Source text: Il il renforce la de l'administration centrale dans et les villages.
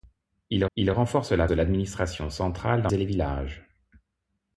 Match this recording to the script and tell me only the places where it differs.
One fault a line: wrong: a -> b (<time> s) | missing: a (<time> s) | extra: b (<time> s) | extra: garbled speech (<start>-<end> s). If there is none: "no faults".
no faults